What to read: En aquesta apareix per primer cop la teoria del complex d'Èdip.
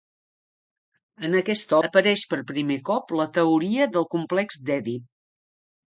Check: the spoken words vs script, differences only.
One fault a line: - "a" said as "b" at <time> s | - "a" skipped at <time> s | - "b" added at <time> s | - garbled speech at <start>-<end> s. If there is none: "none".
none